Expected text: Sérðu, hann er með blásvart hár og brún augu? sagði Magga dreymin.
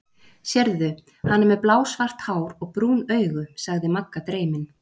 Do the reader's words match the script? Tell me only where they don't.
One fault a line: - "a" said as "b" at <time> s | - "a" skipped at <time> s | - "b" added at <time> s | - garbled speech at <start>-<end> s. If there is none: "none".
none